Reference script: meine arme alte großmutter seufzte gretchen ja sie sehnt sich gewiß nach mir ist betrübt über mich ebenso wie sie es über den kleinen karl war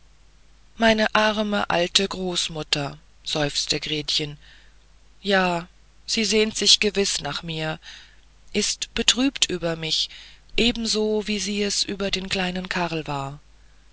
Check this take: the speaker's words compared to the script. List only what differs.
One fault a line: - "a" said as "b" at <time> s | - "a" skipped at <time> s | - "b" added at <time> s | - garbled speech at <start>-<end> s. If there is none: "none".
none